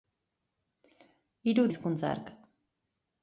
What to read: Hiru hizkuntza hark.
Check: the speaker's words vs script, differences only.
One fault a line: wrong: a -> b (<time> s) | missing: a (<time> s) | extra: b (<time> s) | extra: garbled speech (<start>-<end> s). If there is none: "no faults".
no faults